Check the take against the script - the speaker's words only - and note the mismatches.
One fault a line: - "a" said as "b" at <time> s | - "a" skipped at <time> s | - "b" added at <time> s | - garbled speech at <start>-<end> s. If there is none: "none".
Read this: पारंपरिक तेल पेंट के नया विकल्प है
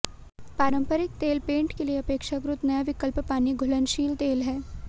- "लिए अपेक्षाकृत" added at 1.8 s
- "पानी घुलनशील तेल" added at 3.3 s